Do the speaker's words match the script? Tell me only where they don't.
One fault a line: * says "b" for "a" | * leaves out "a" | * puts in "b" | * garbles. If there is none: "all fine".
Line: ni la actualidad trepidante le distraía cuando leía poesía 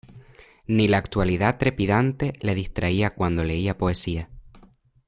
all fine